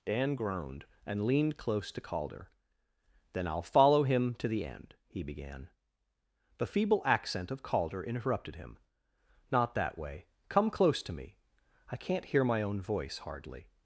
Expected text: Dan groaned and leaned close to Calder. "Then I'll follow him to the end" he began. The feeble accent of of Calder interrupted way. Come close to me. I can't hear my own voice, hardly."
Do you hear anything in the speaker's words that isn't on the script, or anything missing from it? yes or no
yes